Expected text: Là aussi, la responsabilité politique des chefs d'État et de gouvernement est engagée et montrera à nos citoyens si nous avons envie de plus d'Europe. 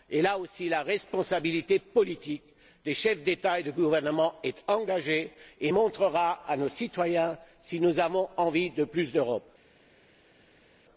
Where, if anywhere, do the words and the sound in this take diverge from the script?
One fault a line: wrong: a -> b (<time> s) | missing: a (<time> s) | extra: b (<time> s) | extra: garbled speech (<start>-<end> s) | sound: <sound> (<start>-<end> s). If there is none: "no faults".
no faults